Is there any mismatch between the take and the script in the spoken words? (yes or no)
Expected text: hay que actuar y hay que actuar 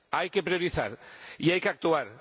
yes